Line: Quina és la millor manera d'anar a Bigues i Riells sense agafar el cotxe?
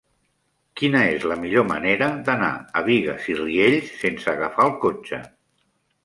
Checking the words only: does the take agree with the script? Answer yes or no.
yes